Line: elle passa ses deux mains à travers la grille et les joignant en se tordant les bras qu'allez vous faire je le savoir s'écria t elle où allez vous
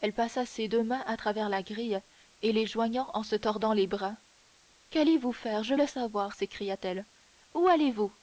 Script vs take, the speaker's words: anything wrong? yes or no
no